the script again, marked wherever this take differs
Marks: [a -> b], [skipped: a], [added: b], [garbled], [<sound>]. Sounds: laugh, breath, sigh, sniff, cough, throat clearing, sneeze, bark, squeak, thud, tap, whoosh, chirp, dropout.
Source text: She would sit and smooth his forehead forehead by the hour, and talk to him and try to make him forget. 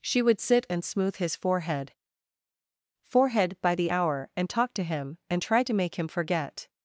She would sit and smooth his forehead forehead by the hour, and talk to him and try to make him forget.